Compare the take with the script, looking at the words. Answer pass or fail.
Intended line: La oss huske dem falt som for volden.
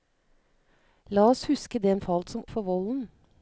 pass